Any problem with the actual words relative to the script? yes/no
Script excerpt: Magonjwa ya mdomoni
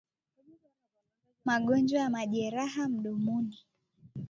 yes